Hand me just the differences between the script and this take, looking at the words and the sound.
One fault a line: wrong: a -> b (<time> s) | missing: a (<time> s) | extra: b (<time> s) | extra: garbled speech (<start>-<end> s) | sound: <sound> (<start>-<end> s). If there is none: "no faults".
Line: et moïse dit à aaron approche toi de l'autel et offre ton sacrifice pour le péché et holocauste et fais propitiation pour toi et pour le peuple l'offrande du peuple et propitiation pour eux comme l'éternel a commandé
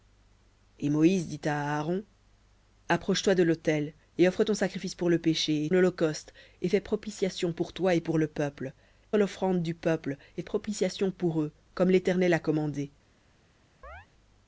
sound: chirp (13.8-14.1 s)